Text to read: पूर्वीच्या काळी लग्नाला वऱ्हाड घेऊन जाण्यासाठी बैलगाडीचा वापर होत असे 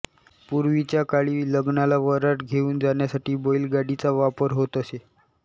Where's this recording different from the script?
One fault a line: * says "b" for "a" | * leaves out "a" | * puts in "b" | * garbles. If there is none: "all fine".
all fine